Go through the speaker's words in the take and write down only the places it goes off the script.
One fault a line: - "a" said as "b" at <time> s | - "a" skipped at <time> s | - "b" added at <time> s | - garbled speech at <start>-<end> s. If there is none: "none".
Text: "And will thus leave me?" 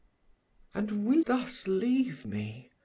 none